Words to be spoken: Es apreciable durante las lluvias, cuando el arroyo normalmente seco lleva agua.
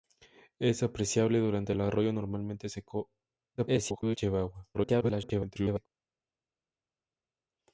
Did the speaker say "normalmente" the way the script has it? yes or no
yes